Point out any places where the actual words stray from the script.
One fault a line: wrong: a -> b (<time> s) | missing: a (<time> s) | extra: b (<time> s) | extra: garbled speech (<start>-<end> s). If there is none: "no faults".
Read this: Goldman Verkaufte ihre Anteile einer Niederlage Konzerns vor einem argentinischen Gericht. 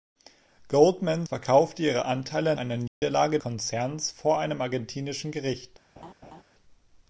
no faults